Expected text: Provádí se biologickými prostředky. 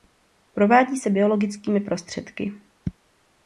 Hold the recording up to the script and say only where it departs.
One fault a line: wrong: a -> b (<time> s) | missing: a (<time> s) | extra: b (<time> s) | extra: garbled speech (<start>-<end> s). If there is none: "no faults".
no faults